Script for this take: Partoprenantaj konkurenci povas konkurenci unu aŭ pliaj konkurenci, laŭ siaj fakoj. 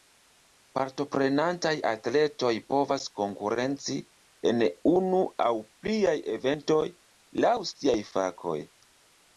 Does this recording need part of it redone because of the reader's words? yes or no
yes